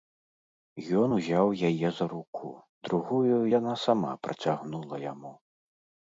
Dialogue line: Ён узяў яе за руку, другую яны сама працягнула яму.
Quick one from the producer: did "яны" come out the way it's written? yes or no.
no